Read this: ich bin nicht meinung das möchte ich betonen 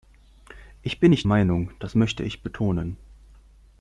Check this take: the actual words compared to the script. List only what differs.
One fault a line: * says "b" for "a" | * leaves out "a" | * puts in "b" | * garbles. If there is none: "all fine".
all fine